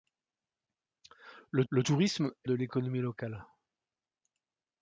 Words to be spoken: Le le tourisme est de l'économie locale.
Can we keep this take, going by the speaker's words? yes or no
yes